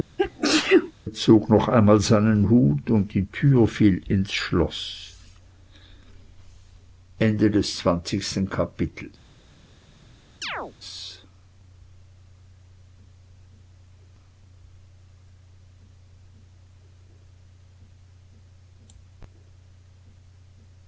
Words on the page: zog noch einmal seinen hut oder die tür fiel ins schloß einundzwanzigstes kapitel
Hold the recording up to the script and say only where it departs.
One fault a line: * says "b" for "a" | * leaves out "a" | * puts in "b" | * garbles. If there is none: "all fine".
* says "und" for "oder"